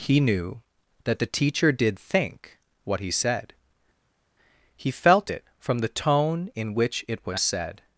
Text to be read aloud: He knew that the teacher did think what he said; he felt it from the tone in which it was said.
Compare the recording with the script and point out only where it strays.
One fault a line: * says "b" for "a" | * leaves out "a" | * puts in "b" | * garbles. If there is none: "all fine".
all fine